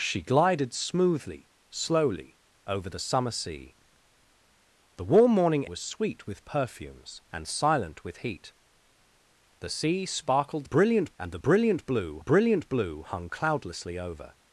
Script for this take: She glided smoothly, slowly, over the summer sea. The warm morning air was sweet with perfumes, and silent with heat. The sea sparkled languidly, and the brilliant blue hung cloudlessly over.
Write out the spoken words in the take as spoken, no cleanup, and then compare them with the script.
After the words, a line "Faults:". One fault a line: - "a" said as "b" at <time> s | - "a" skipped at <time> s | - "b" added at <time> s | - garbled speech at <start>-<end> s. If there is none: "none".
She glided smoothly, slowly, over the summer sea. The warm morning was sweet with perfumes, and silent with heat. The sea sparkled brilliant, and the brilliant blue brilliant blue hung cloudlessly over.
Faults:
- "air" skipped at 5.7 s
- "languidly" said as "brilliant" at 10.6 s
- "brilliant blue" added at 12.2 s